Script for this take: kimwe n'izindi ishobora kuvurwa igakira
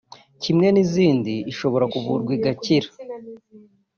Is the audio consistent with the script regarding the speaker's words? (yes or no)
yes